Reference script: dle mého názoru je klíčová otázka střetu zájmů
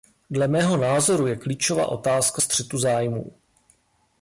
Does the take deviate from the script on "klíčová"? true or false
false